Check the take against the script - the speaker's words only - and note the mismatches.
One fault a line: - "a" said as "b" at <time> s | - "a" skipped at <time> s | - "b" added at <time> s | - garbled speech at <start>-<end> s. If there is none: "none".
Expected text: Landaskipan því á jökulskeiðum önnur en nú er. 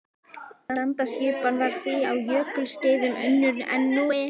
- "var" added at 1.6 s